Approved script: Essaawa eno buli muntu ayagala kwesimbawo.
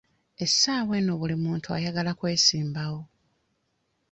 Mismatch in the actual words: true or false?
false